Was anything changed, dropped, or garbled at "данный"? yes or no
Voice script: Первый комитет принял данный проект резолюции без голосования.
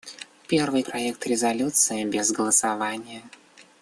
yes